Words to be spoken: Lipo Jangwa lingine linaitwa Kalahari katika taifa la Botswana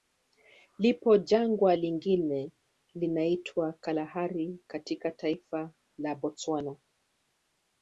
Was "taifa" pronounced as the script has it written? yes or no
yes